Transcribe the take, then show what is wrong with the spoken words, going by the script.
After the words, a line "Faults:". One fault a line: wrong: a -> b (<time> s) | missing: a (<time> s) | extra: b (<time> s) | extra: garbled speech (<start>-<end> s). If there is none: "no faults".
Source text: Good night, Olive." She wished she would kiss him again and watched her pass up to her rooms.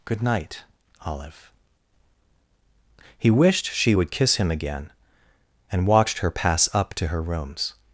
Good night, Olive." He wished she would kiss him again and watched her pass up to her rooms.
Faults:
wrong: She -> He (3.2 s)